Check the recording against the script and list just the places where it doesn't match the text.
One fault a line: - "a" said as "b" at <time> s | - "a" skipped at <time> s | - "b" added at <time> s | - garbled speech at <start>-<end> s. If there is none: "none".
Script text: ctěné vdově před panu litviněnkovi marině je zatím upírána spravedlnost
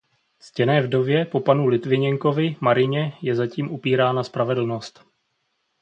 - "před" said as "po" at 1.2 s